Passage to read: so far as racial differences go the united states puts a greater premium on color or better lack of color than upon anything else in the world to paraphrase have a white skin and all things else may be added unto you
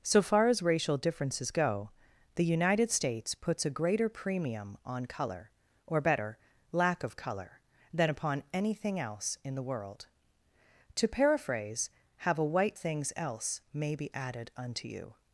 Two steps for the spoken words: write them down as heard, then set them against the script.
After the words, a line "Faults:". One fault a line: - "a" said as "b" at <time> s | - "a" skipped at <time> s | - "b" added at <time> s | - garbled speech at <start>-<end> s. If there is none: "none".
so far as racial differences go the united states puts a greater premium on color or better lack of color than upon anything else in the world to paraphrase have a white things else may be added unto you
Faults:
- "skin and all" skipped at 12.8 s